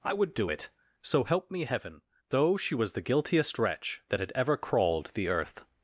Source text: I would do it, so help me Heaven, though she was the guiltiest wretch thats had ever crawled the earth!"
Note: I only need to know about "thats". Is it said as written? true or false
false